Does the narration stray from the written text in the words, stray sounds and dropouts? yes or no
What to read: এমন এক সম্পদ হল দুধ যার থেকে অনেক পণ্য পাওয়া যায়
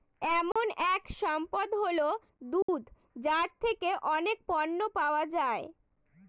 yes